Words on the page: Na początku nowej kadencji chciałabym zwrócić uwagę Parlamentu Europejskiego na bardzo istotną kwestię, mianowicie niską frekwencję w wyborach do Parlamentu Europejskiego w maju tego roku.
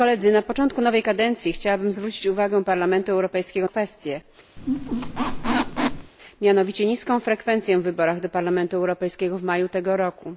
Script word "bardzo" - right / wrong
wrong